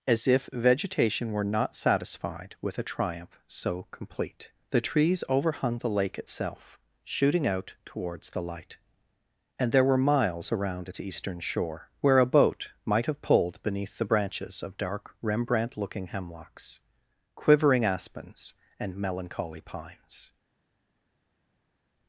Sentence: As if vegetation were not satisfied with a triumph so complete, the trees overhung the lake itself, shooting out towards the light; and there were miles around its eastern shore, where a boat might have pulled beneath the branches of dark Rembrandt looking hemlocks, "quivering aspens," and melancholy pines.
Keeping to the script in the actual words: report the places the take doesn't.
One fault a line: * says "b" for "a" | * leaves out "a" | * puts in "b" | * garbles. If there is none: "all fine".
all fine